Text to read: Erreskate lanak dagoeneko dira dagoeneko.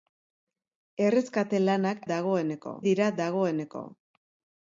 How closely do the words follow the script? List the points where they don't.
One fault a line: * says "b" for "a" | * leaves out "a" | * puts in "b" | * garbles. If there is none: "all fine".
all fine